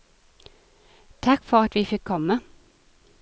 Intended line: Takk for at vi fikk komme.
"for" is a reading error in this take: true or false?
false